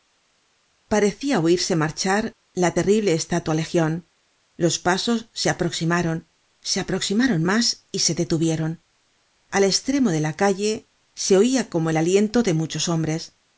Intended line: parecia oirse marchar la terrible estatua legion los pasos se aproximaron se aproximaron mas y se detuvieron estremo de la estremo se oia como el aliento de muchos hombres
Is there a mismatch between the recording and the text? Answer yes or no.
yes